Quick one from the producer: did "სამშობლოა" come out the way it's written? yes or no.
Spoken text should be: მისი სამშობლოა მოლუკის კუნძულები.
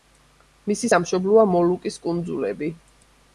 yes